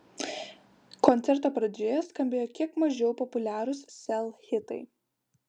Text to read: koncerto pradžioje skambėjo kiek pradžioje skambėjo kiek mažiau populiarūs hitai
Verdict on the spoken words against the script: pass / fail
fail